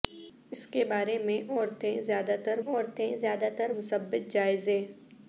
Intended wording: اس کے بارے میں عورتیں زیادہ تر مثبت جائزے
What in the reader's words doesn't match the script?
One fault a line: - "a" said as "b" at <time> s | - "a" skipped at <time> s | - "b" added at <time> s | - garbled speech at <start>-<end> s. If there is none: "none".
- "عورتیں زیادہ تر" added at 2.6 s